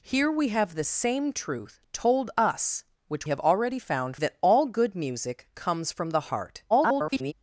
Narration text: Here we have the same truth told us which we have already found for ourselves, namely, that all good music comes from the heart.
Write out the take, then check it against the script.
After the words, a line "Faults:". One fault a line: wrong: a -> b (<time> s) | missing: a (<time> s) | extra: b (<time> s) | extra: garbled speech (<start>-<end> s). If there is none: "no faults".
Here we have the same truth told us which have already found that all good music comes from the heart. [garbled]
Faults:
missing: we (3.3 s)
missing: for ourselves namely (4.2 s)
extra: garbled speech (6.7-7.3 s)